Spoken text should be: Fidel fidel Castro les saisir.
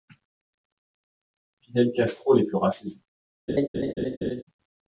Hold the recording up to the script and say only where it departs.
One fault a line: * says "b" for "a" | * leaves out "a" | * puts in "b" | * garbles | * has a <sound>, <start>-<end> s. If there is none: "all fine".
* leaves out "fidel"
* puts in "fera"
* has a laugh, 3.5-4.4 s